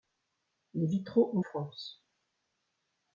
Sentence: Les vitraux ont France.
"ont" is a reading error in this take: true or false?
false